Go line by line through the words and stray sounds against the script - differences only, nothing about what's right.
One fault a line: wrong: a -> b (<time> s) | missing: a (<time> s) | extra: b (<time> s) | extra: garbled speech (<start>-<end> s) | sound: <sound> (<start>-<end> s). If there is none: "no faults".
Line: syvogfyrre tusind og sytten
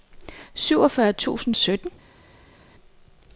no faults